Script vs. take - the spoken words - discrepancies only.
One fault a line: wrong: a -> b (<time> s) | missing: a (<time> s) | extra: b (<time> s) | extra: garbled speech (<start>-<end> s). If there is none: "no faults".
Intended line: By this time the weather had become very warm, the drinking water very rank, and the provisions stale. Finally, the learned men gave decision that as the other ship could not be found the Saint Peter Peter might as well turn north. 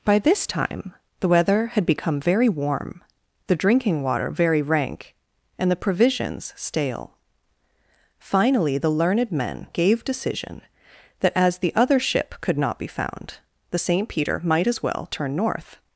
missing: Peter (14.4 s)